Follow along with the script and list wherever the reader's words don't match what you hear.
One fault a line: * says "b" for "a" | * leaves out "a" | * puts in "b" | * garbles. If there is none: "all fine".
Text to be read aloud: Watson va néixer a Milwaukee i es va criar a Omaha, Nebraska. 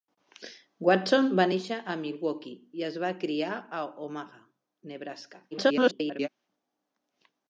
* garbles